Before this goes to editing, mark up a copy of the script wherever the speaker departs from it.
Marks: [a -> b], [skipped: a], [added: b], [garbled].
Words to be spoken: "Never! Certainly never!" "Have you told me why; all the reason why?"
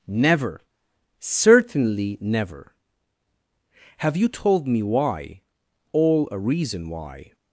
"Never! Certainly never!" "Have you told me why; all [the -> a] reason why?"